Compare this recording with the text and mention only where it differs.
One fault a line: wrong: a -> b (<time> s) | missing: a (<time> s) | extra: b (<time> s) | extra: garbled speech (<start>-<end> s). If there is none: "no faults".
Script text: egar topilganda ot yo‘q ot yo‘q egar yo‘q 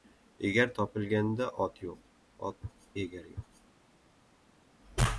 no faults